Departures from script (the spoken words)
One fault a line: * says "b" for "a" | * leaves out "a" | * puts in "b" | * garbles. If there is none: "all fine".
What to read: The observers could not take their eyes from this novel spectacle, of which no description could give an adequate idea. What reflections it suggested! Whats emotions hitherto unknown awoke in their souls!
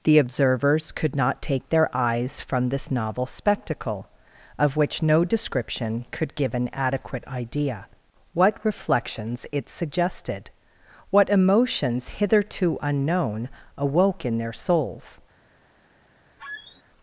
* says "What" for "Whats"